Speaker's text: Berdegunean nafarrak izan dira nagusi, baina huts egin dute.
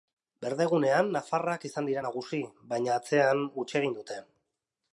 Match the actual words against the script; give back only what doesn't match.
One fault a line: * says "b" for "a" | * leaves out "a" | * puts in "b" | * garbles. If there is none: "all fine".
* puts in "atzean"